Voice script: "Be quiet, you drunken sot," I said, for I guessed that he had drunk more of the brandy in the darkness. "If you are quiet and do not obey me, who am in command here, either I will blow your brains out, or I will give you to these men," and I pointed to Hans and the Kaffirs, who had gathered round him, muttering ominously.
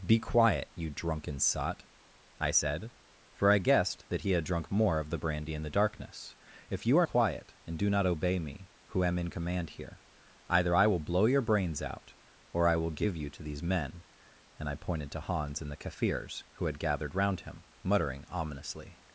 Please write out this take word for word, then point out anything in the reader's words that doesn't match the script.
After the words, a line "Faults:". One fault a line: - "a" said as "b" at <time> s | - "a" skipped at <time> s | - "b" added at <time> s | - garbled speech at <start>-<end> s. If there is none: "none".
"Be quiet, you drunken sot," I said, for I guessed that he had drunk more of the brandy in the darkness. "If you are quiet and do not obey me, who am in command here, either I will blow your brains out, or I will give you to these men," and I pointed to Hans and the Kaffirs, who had gathered round him, muttering ominously.
Faults:
none